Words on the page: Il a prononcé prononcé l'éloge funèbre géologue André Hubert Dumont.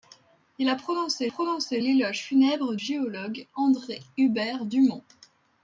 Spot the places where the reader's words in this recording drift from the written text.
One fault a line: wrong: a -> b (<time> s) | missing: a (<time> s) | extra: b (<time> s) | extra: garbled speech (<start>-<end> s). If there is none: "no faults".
no faults